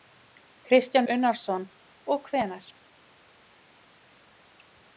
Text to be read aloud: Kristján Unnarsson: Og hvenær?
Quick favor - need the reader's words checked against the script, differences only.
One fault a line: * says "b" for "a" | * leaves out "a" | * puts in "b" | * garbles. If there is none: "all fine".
all fine